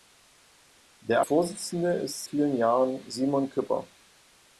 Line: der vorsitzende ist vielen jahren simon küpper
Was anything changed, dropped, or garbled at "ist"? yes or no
no